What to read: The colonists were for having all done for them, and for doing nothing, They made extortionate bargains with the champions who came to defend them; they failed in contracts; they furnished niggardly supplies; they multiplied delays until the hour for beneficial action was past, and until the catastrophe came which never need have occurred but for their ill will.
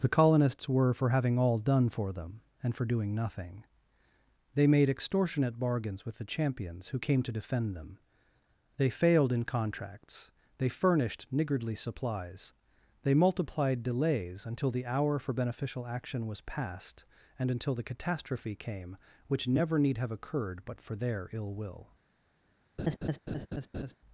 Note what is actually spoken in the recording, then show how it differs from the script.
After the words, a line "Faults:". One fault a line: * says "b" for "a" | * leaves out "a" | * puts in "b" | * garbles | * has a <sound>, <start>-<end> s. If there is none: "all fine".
The colonists were for having all done for them, and for doing nothing, They made extortionate bargains with the champions who came to defend them; they failed in contracts; they furnished niggardly supplies; they multiplied delays until the hour for beneficial action was past, and until the catastrophe came which never need have occurred but for their ill will.
Faults:
* has a laugh, 22.8-24.0 s